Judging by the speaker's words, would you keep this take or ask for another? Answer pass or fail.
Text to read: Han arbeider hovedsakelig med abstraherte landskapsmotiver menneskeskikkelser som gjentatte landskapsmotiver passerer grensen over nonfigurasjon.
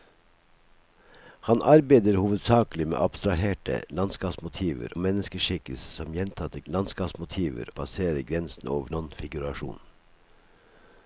pass